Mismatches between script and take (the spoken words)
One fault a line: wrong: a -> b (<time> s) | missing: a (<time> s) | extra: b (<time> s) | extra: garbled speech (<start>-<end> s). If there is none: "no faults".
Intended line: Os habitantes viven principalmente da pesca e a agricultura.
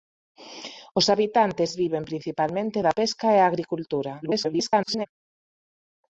extra: garbled speech (4.2-5.1 s)